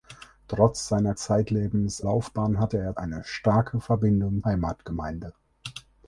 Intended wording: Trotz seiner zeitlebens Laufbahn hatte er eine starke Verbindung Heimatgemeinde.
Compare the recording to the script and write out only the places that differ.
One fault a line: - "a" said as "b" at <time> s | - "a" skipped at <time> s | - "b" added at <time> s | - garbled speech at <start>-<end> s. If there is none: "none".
none